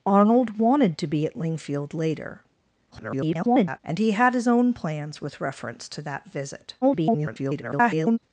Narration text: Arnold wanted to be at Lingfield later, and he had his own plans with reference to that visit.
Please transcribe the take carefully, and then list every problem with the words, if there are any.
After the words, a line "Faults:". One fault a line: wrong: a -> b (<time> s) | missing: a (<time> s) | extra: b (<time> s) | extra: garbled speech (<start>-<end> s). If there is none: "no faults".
Arnold wanted to be at Lingfield later, [garbled] and he had his own plans with reference to that visit. [garbled]
Faults:
extra: garbled speech (2.9-3.8 s)
extra: garbled speech (6.8-8.2 s)